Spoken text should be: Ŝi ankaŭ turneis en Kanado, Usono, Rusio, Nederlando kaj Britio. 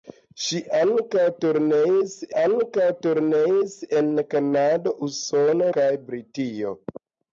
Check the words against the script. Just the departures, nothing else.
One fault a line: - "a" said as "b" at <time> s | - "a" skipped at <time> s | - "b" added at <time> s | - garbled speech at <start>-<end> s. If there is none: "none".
- "ankaŭ turneis" added at 2.4 s
- "Rusio Nederlando" skipped at 5.7 s